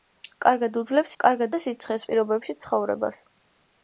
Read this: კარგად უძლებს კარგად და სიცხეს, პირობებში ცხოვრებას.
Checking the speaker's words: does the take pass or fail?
pass